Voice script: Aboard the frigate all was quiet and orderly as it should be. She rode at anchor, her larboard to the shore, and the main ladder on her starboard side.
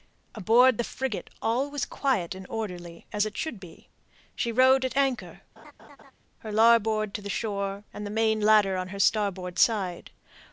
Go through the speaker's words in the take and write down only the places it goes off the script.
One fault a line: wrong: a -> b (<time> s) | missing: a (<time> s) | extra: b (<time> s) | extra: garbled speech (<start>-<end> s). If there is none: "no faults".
no faults